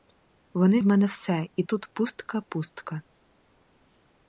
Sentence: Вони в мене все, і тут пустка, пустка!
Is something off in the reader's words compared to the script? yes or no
no